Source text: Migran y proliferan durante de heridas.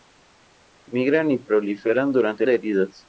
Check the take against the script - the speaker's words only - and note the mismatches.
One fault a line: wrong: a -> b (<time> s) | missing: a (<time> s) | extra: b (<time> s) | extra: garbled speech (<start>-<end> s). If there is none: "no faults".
no faults